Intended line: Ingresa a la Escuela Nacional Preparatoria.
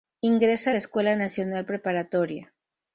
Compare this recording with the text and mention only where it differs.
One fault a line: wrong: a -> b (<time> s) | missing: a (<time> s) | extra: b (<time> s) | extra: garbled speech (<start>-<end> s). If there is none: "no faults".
no faults